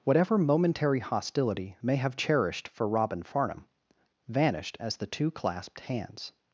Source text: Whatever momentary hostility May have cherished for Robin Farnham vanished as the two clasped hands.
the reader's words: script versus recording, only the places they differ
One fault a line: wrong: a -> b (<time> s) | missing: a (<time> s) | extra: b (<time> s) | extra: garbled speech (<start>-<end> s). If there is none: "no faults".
no faults